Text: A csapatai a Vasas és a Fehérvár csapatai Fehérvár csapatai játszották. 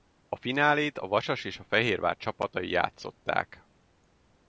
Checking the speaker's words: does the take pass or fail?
fail